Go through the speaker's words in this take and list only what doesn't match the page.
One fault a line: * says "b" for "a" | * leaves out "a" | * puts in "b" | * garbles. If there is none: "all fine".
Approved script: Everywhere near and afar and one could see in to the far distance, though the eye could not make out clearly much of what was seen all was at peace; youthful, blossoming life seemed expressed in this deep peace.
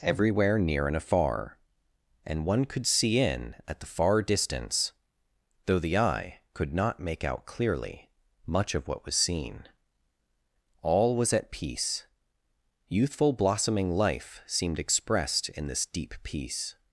* says "at" for "to"